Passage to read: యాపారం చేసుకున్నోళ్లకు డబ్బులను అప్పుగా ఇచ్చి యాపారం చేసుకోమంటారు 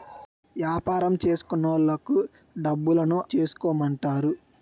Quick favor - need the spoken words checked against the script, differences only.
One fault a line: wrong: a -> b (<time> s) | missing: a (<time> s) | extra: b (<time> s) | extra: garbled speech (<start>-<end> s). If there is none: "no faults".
missing: అప్పుగా ఇచ్చి యాపారం (3.2 s)